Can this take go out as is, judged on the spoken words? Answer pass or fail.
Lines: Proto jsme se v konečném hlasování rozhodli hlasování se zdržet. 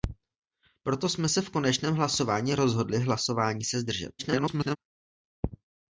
fail